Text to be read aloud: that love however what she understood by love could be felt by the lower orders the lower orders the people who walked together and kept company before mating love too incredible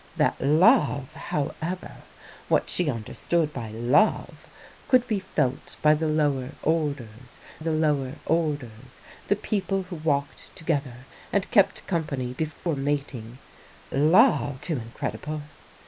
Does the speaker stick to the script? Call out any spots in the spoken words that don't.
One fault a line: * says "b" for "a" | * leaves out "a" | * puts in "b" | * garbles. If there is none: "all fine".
all fine